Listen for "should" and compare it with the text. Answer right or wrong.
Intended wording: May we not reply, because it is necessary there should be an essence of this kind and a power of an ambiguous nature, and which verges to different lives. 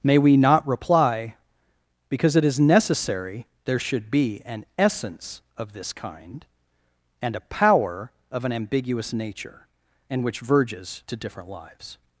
right